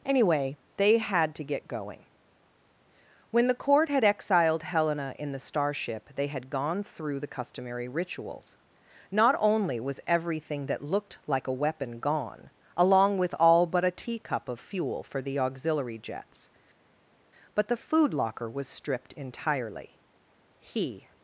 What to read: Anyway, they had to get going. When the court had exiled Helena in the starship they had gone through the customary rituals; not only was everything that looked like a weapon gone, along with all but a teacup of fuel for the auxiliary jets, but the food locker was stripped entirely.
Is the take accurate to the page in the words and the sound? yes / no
no